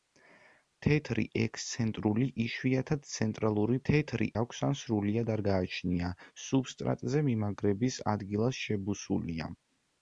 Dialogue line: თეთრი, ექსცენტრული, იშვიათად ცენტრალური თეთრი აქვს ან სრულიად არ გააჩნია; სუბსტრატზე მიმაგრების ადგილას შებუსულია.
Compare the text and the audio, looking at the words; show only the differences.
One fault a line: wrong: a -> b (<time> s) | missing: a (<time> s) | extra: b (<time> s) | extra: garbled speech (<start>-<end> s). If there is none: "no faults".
no faults